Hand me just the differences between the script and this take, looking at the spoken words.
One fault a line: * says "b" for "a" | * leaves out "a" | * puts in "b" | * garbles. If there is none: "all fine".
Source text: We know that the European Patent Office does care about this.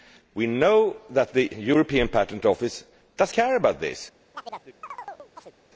all fine